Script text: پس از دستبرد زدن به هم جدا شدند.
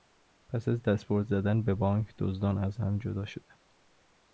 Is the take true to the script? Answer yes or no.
no